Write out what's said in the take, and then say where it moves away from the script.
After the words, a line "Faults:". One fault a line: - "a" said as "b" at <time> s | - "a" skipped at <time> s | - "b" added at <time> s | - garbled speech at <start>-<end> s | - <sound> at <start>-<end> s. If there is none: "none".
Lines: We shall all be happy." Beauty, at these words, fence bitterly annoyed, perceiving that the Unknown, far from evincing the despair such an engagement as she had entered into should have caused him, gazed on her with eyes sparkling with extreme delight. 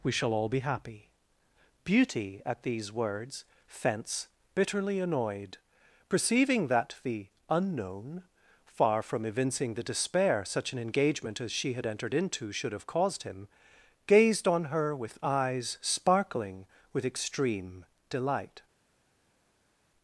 We shall all be happy." Beauty, at these words, fence bitterly annoyed, perceiving that the Unknown, far from evincing the despair such an engagement as she had entered into should have caused him, gazed on her with eyes sparkling with extreme delight.
Faults:
none